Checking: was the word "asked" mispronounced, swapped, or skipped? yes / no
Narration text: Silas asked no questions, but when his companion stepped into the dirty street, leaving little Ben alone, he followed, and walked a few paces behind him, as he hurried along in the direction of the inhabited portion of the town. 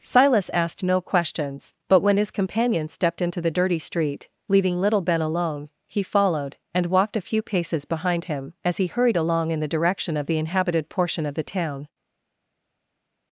no